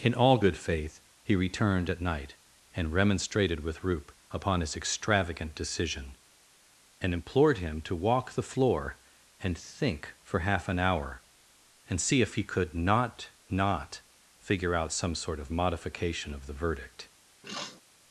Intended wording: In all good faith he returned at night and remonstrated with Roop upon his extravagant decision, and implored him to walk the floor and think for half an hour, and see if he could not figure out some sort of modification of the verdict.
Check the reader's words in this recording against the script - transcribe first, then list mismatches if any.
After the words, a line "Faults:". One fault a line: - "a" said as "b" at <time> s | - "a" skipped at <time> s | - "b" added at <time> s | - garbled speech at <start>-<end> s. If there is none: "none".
In all good faith he returned at night and remonstrated with Roop upon his extravagant decision, and implored him to walk the floor and think for half an hour, and see if he could not not figure out some sort of modification of the verdict.
Faults:
- "not" added at 13.5 s